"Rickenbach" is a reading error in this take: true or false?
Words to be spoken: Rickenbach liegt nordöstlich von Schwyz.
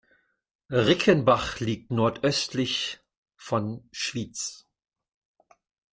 false